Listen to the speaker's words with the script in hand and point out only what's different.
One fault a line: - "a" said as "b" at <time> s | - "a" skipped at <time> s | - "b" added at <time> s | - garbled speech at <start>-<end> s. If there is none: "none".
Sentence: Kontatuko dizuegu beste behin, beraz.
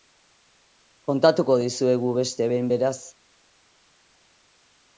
none